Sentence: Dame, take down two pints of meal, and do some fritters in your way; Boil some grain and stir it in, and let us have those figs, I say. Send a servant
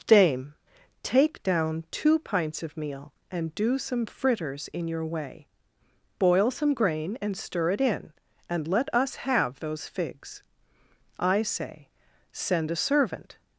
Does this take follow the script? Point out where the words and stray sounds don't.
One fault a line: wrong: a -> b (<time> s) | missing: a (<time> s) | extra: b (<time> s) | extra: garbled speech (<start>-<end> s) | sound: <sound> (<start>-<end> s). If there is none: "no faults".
no faults